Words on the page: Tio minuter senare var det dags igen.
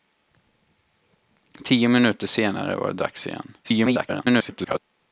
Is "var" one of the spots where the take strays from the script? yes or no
no